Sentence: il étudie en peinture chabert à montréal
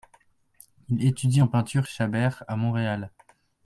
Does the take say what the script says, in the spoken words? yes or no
yes